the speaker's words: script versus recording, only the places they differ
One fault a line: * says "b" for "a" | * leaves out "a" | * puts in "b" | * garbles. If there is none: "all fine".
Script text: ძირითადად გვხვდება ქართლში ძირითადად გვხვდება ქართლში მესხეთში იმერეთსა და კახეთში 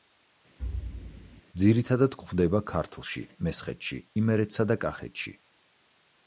* leaves out "ძირითადად გვხვდება ქართლში"